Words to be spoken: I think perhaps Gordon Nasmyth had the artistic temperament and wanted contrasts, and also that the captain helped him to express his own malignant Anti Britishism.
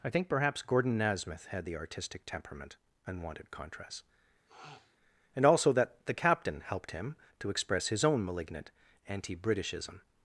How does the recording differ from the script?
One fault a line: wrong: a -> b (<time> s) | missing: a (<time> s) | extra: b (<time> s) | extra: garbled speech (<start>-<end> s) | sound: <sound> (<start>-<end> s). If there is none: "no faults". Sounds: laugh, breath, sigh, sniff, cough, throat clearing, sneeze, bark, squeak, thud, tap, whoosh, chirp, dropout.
wrong: contrasts -> contrast (3.5 s)
sound: sniff (4.5-5.0 s)